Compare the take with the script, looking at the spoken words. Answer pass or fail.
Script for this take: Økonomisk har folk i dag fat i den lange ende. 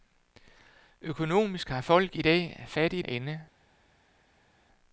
fail